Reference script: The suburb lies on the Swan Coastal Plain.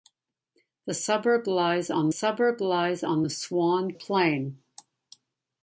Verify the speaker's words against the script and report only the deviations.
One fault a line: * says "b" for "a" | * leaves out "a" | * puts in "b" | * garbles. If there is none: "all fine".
* puts in "suburb lies on"
* leaves out "Coastal"